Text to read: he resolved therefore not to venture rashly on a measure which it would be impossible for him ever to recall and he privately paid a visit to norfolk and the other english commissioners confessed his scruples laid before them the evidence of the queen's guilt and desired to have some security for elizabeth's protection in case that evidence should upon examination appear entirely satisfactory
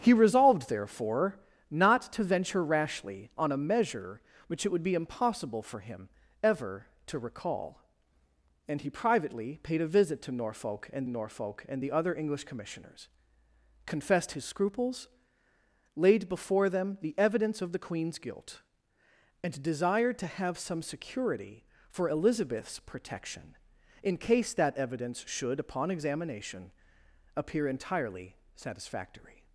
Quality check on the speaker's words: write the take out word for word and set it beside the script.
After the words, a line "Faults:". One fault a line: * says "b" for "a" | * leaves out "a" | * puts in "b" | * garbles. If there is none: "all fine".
he resolved therefore not to venture rashly on a measure which it would be impossible for him ever to recall and he privately paid a visit to norfolk and norfolk and the other english commissioners confessed his scruples laid before them the evidence of the queen's guilt and desired to have some security for elizabeth's protection in case that evidence should upon examination appear entirely satisfactory
Faults:
* puts in "norfolk and"